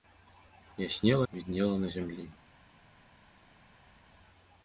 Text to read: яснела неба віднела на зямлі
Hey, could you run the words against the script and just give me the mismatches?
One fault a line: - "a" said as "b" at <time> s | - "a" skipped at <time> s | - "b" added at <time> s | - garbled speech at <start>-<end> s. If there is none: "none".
- "неба" skipped at 1.3 s